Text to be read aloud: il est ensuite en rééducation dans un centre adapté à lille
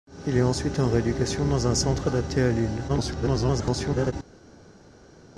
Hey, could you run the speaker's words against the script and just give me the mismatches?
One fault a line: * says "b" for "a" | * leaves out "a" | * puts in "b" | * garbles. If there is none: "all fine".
* garbles